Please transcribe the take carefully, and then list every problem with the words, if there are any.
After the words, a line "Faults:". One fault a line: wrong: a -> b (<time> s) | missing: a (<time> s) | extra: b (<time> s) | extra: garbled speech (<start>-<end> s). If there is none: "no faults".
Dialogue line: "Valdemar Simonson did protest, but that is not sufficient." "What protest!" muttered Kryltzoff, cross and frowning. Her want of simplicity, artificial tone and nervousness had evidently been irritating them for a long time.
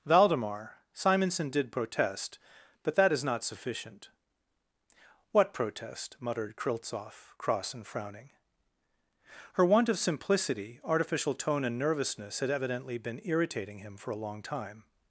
"Valdemar Simonson did protest, but that is not sufficient." "What protest!" muttered Kryltzoff, cross and frowning. Her want of simplicity, artificial tone and nervousness had evidently been irritating him for a long time.
Faults:
wrong: them -> him (13.8 s)